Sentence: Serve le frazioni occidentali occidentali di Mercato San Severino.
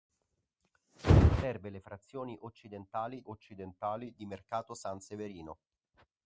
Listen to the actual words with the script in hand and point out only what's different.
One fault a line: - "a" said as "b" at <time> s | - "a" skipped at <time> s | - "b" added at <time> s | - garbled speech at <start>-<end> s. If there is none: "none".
none